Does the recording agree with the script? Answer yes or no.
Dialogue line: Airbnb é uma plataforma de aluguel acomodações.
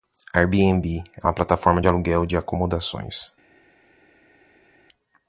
no